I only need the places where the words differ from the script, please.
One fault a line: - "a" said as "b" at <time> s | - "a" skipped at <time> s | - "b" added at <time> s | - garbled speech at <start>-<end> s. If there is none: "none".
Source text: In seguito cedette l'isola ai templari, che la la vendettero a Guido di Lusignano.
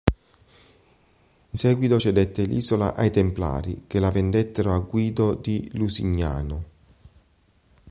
- "la" skipped at 4.1 s